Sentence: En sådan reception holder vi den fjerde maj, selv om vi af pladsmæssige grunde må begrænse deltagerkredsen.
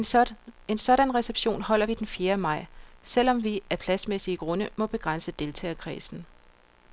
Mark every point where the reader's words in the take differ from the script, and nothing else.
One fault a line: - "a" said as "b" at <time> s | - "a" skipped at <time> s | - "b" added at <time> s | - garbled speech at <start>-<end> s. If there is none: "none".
none